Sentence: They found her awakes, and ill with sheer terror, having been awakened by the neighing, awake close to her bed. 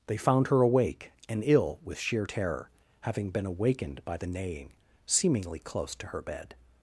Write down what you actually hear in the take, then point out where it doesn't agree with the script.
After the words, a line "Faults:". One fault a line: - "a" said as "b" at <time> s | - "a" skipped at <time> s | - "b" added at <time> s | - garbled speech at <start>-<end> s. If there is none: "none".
They found her awake, and ill with sheer terror, having been awakened by the neighing, seemingly close to her bed.
Faults:
- "awakes" said as "awake" at 0.6 s
- "awake" said as "seemingly" at 5.1 s